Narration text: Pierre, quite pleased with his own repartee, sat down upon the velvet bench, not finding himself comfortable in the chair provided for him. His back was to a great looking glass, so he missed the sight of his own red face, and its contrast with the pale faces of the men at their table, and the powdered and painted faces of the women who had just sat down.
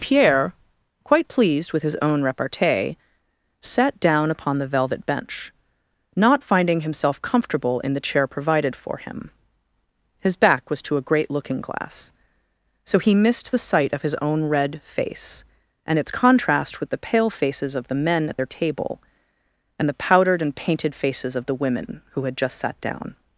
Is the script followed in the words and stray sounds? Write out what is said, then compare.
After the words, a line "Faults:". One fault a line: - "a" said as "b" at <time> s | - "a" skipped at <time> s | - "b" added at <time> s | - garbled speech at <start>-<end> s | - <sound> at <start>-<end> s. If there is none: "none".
Pierre, quite pleased with his own repartee, sat down upon the velvet bench, not finding himself comfortable in the chair provided for him. His back was to a great looking glass, so he missed the sight of his own red face, and its contrast with the pale faces of the men at their table, and the powdered and painted faces of the women who had just sat down.
Faults:
none